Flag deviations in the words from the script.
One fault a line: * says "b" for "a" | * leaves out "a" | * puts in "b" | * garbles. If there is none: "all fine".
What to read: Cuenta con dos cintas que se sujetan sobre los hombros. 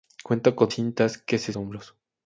* leaves out "dos"
* leaves out "sujetan sobre los"